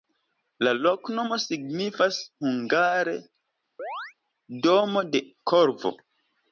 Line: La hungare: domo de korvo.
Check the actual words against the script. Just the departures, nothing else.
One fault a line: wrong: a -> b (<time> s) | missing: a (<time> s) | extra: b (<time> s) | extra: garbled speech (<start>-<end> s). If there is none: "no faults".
extra: loknomo signifas (0.8 s)